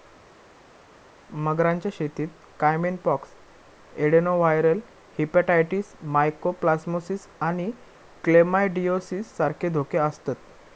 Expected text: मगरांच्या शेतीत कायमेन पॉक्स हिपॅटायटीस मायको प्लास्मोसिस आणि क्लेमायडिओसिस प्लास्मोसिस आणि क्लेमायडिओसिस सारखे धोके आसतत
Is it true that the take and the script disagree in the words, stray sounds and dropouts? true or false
true